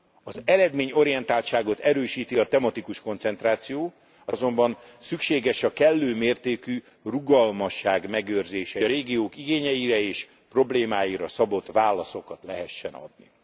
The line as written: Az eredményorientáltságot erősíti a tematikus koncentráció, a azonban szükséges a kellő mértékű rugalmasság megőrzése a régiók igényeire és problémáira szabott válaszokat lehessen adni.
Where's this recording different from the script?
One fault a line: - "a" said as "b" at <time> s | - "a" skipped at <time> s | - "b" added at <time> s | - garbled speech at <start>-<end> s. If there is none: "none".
none